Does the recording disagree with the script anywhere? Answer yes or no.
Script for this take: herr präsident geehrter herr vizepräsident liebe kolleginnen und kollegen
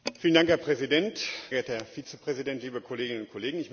no